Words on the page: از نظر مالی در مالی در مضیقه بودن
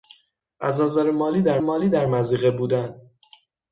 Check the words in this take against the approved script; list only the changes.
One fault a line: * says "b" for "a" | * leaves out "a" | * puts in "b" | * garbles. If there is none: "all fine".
all fine